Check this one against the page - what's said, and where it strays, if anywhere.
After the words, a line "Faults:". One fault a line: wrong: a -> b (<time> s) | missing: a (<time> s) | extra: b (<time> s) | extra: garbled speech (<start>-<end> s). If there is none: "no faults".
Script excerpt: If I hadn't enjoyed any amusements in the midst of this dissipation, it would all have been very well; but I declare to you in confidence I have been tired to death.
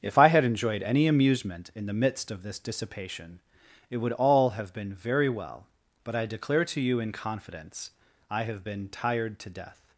If I had enjoyed any amusement in the midst of this dissipation, it would all have been very well; but I declare to you in confidence I have been tired to death.
Faults:
wrong: hadn't -> had (0.3 s)
wrong: amusements -> amusement (1.1 s)